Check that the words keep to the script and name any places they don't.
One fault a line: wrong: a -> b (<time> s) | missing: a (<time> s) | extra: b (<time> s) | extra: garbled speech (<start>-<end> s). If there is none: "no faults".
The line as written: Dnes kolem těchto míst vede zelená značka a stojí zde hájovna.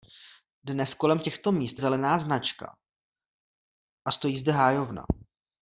missing: vede (1.8 s)